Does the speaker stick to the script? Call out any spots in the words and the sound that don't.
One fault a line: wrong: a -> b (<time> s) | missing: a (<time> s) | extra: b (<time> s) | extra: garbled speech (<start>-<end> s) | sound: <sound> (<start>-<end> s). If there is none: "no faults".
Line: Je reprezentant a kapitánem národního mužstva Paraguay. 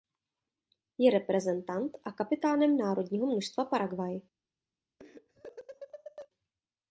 sound: laugh (5.0-6.3 s)